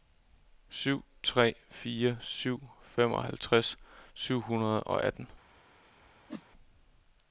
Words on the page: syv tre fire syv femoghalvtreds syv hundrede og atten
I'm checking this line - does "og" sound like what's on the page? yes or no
yes